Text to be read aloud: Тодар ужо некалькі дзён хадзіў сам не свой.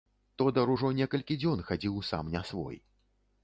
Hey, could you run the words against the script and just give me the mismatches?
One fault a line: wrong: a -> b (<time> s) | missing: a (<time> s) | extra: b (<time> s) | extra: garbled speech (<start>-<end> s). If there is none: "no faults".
no faults